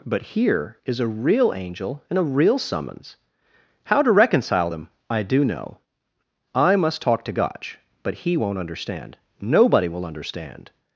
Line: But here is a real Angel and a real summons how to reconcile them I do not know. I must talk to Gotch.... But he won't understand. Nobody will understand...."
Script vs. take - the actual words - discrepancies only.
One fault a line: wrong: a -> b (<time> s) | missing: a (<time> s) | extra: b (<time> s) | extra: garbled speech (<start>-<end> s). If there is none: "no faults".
missing: not (5.4 s)